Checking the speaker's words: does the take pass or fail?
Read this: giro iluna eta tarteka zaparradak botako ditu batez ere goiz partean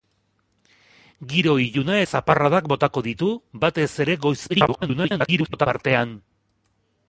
fail